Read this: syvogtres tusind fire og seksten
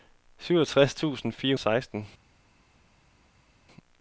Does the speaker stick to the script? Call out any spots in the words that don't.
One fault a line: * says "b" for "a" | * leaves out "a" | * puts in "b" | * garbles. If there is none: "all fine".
all fine